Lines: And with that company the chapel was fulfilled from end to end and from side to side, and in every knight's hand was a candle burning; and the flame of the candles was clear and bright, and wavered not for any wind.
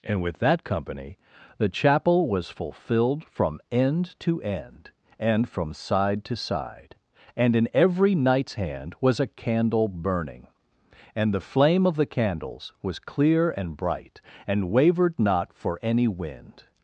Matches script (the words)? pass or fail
pass